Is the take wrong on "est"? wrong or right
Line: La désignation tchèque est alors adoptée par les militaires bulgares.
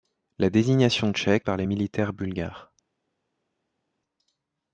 wrong